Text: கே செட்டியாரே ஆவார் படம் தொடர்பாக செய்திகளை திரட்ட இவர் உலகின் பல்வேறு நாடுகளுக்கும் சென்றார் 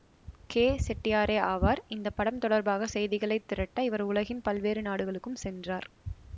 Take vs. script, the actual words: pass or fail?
fail